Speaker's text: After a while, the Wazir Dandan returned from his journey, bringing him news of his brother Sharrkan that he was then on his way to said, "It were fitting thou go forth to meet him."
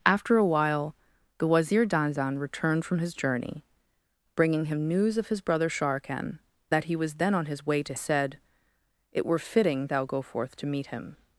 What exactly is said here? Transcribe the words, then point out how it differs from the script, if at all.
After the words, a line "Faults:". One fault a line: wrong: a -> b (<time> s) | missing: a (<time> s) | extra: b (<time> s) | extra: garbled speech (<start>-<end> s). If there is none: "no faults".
After a while, the Wazir Dandan returned from his journey, bringing him news of his brother Sharrkan that he was then on his way to said, "It were fitting thou go forth to meet him."
Faults:
no faults